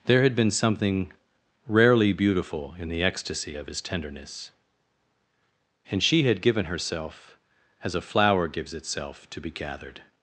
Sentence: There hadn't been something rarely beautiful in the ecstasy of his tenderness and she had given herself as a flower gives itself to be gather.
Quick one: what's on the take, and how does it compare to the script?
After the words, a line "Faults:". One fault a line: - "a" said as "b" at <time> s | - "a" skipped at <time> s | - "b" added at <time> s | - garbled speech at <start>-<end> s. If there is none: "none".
There had been something rarely beautiful in the ecstasy of his tenderness and she had given herself as a flower gives itself to be gathered.
Faults:
- "hadn't" said as "had" at 0.2 s
- "gather" said as "gathered" at 9.5 s